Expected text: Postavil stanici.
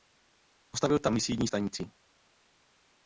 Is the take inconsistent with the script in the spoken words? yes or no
yes